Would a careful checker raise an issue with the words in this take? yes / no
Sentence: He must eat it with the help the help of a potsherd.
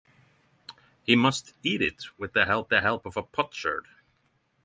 no